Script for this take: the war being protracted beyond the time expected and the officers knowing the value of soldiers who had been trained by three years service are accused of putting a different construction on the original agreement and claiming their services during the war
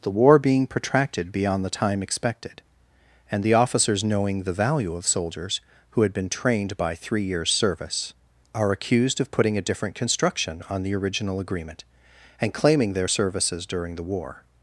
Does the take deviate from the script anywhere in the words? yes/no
no